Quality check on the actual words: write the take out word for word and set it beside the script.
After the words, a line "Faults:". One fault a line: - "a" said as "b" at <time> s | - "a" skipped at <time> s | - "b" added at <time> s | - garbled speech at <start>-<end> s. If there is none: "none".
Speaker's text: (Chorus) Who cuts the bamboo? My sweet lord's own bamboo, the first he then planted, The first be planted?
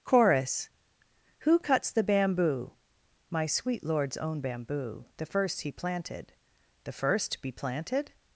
(Chorus) Who cuts the bamboo? My sweet lord's own bamboo, the first he planted, The first be planted?
Faults:
- "then" skipped at 5.7 s